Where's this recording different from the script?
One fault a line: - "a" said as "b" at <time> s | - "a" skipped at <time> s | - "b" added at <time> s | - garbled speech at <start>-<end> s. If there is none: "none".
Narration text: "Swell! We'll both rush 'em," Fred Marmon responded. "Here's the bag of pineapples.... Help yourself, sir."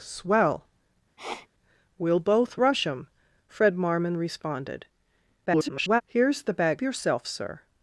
- garbled speech at 5.5-6.0 s
- "of pineapples Help" skipped at 6.8 s